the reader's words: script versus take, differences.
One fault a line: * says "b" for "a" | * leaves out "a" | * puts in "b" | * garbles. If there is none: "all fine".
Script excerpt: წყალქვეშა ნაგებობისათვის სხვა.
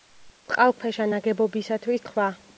all fine